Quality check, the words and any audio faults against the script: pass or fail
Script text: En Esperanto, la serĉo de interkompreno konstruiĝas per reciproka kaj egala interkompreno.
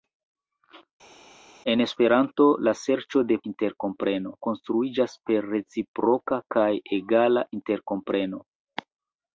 pass